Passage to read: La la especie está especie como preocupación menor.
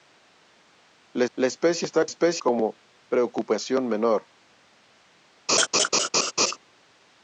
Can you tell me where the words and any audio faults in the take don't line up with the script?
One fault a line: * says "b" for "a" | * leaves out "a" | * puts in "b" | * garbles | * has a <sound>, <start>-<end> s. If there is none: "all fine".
* has a laugh, 5.5-6.6 s